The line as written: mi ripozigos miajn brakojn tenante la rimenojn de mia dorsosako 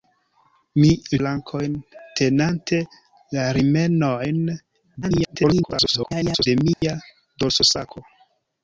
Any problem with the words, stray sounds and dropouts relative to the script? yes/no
yes